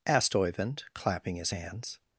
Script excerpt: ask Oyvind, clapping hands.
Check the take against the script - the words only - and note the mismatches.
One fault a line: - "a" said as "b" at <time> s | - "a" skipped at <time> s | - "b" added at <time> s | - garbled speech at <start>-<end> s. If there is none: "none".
- "ask" said as "asked" at 0.1 s
- "his" added at 1.4 s